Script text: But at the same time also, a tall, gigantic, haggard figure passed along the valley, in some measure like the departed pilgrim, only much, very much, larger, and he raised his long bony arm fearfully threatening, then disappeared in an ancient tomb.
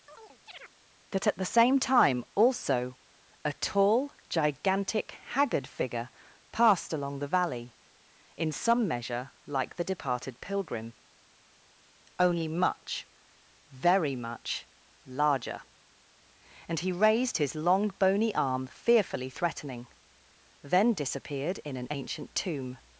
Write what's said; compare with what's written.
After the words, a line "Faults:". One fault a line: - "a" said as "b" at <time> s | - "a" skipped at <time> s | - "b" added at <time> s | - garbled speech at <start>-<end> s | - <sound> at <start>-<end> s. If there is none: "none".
That at the same time also, a tall, gigantic, haggard figure passed along the valley, in some measure like the departed pilgrim, only much, very much, larger, and he raised his long bony arm fearfully threatening, then disappeared in an ancient tomb.
Faults:
- chirp at 0.1-0.7 s
- "But" said as "That" at 1.1 s